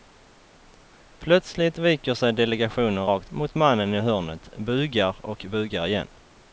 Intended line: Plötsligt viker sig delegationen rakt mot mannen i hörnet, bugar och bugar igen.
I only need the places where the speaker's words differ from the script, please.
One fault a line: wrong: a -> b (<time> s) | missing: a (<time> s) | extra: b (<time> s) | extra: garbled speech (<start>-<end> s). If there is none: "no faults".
no faults